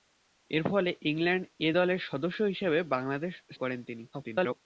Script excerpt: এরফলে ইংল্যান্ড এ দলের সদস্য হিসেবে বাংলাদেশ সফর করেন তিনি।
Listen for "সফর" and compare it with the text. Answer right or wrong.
wrong